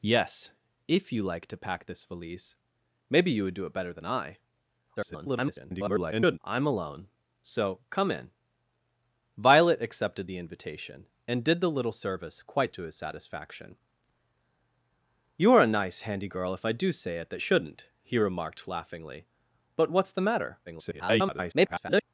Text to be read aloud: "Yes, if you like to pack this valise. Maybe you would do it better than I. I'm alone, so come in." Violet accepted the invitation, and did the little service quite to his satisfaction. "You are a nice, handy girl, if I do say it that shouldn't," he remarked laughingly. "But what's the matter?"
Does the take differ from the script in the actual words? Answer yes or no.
yes